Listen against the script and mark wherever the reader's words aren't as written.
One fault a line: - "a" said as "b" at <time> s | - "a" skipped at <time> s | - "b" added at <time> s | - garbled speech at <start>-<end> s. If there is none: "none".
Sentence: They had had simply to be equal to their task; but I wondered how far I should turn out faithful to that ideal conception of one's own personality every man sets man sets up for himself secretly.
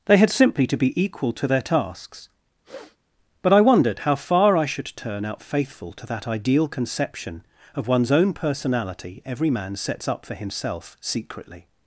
- "had" skipped at 0.3 s
- "task" said as "tasks" at 1.6 s
- "man sets" skipped at 10.1 s